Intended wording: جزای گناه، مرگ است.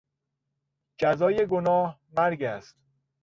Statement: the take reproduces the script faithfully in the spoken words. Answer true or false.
true